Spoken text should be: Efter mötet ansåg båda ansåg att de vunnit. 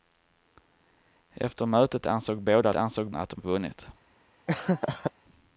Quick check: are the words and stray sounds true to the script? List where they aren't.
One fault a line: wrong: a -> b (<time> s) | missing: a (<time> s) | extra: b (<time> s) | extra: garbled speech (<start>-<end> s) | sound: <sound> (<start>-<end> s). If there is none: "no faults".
sound: laugh (4.5-5.1 s)